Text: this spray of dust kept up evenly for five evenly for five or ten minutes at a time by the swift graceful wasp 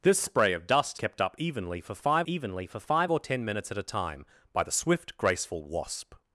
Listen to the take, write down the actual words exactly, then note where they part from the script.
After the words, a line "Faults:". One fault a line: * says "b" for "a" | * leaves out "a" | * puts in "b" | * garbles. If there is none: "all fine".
this spray of dust kept up evenly for five evenly for five or ten minutes at a time by the swift graceful wasp
Faults:
all fine